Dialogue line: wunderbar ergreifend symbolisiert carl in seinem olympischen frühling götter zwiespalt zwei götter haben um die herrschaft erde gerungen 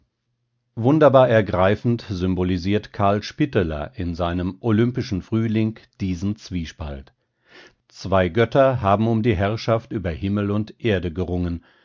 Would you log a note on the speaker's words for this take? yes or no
yes